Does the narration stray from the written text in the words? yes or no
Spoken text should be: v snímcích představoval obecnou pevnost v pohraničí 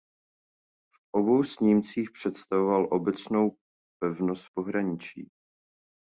yes